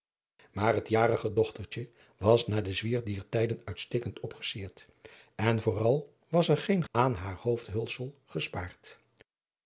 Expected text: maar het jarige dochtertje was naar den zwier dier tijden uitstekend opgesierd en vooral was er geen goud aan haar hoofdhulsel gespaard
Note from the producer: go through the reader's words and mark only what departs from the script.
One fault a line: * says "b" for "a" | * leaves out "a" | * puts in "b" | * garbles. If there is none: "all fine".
* leaves out "goud"